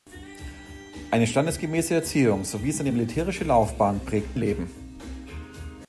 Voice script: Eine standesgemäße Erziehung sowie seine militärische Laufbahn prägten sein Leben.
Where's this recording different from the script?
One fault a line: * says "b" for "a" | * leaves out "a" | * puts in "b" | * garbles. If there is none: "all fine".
* leaves out "sein"